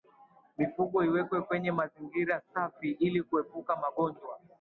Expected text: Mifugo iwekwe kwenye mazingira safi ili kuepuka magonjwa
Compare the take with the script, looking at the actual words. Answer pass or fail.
pass